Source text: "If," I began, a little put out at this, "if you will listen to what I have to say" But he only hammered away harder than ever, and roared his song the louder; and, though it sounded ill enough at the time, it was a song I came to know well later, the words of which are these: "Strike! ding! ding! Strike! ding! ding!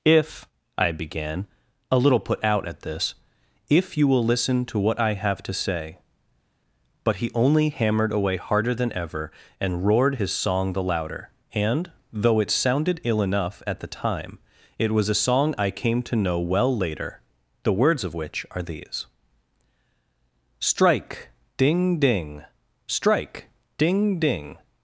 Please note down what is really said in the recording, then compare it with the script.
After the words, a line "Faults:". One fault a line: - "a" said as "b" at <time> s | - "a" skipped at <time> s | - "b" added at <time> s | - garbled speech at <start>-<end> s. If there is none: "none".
"If," I began, a little put out at this, "if you will listen to what I have to say" But he only hammered away harder than ever, and roared his song the louder; and, though it sounded ill enough at the time, it was a song I came to know well later, the words of which are these: "Strike! ding! ding! Strike! ding! ding!
Faults:
none